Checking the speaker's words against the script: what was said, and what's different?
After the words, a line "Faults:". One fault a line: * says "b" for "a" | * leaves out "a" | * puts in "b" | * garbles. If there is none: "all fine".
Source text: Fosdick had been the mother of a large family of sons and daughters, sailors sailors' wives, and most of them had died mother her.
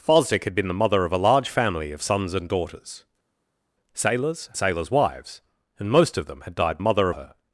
Fosdick had been the mother of a large family of sons and daughters, sailors sailors' wives, and most of them had died mother her.
Faults:
all fine